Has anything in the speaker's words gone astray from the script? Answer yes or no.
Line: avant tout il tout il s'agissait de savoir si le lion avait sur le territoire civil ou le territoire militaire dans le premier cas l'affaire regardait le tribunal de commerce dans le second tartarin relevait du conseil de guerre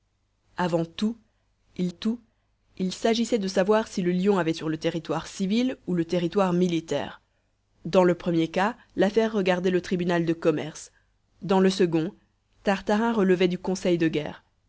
no